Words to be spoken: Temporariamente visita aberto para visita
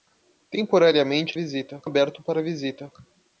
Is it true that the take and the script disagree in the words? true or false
false